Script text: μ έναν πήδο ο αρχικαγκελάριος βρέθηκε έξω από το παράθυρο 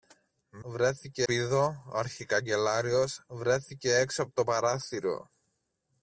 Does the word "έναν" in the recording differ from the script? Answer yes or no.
yes